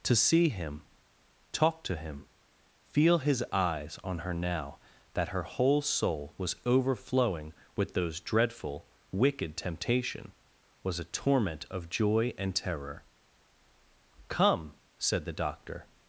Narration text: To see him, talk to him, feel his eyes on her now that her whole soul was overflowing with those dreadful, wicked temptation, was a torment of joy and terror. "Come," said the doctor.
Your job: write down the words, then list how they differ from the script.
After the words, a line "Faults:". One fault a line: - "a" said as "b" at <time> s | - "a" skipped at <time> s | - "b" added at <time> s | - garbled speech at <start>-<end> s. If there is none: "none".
To see him, talk to him, feel his eyes on her now that her whole soul was overflowing with those dreadful, wicked temptation, was a torment of joy and terror. "Come," said the doctor.
Faults:
none